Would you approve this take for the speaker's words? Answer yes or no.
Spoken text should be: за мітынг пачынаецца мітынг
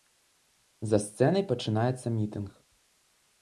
no